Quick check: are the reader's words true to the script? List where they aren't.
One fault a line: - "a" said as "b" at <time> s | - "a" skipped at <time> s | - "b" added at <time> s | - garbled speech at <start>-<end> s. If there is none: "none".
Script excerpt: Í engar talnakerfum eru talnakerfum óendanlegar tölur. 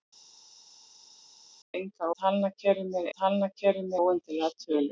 none